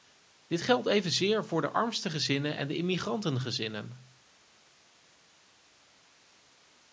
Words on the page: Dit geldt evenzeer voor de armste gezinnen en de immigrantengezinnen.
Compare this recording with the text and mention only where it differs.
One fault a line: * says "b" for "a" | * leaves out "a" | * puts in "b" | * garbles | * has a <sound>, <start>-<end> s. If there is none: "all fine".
all fine